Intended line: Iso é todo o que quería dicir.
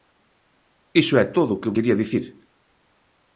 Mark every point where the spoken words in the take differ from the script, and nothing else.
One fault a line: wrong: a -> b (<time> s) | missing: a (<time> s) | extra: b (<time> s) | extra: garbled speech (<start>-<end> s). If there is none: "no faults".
no faults